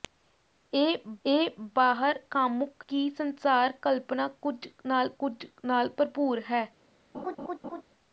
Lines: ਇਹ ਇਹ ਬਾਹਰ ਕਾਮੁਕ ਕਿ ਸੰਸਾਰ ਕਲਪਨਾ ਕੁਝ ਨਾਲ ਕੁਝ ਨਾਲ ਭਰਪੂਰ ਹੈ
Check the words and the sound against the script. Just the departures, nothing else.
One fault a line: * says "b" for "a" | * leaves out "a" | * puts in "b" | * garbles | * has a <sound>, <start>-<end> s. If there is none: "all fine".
* has a laugh, 7.1-7.8 s